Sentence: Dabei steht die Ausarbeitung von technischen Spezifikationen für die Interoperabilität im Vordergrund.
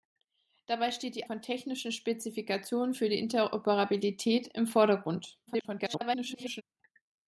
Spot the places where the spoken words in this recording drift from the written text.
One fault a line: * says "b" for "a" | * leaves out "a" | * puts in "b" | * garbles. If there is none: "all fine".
* leaves out "Ausarbeitung"
* garbles